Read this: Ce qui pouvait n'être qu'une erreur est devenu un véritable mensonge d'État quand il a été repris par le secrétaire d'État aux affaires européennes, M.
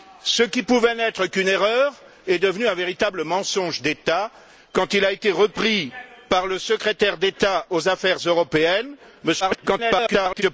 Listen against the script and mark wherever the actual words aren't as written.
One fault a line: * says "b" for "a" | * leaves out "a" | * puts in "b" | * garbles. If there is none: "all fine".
* garbles